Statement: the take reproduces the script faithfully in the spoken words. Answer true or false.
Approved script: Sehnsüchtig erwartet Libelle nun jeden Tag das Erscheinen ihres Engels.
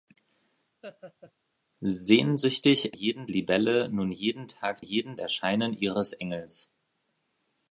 false